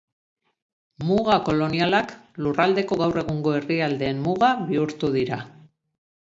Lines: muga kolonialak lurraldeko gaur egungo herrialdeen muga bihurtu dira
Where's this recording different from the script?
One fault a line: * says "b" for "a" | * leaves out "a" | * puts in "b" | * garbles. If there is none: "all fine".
all fine